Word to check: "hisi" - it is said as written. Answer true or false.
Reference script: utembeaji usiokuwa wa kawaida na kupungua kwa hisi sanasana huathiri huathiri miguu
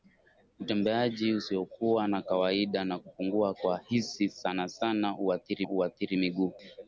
true